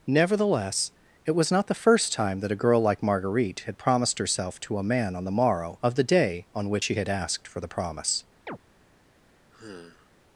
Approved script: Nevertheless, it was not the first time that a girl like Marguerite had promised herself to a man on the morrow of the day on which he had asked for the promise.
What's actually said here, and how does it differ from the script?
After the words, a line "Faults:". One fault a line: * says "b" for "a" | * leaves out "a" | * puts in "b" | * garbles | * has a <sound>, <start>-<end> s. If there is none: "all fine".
Nevertheless, it was not the first time that a girl like Marguerite had promised herself to a man on the morrow of the day on which she had asked for the promise.
Faults:
* says "she" for "he"
* has a chirp, 8.5-8.6 s
* has a sigh, 9.5-10.1 s